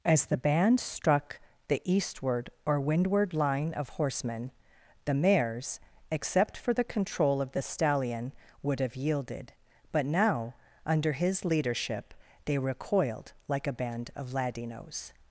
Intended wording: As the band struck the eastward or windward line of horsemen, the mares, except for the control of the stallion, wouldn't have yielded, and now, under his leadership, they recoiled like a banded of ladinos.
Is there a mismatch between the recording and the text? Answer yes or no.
yes